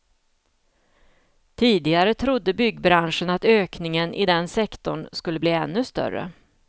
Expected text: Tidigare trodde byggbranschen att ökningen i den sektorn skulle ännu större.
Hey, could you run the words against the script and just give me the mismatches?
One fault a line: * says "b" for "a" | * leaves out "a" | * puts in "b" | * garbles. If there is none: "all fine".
* puts in "bli"